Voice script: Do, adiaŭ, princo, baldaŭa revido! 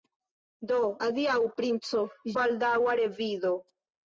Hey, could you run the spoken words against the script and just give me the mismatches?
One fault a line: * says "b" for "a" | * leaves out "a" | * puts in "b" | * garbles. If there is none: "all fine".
all fine